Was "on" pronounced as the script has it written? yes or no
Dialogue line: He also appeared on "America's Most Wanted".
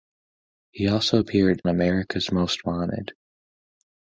no